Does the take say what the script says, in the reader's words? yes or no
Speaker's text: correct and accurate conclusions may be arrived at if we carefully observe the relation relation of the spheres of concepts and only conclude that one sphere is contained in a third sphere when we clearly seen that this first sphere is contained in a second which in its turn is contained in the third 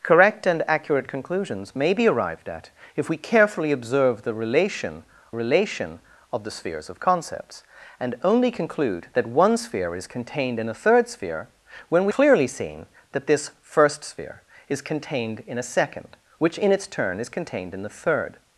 yes